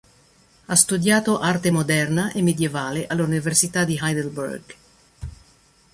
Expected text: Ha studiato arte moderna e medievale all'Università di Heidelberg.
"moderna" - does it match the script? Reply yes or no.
yes